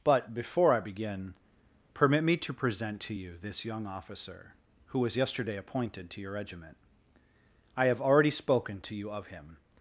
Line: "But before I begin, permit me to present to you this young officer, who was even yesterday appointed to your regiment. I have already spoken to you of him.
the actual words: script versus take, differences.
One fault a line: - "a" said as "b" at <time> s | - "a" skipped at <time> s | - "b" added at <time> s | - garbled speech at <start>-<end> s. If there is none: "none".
- "even" skipped at 5.2 s